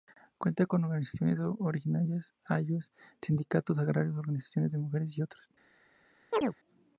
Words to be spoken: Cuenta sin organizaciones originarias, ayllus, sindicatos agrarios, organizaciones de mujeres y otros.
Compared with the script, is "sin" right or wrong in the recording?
wrong